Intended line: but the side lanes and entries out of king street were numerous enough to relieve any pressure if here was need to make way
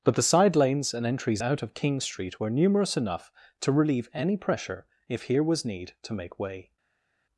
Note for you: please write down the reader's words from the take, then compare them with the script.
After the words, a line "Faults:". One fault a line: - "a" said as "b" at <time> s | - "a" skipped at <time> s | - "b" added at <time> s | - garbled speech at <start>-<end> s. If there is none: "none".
but the side lanes and entries out of king street were numerous enough to relieve any pressure if here was need to make way
Faults:
none